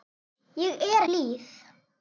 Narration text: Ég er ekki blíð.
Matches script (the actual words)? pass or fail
fail